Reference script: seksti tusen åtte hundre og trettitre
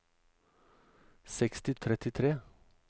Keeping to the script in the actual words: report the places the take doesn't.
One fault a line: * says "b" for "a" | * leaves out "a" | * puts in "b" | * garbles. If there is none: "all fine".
* leaves out "tusen åtte hundre"